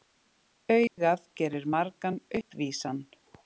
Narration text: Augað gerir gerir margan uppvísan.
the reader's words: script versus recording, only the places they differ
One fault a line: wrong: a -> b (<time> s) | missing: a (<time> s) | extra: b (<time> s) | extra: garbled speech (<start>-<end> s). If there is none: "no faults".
missing: gerir (1.7 s)